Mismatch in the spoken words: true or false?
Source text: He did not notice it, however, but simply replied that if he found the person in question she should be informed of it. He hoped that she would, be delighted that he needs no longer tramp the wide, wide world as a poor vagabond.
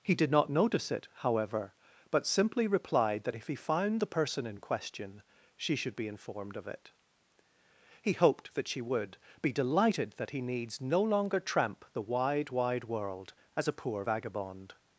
false